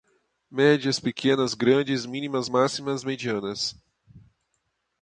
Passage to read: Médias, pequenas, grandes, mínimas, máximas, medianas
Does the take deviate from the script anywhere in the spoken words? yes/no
no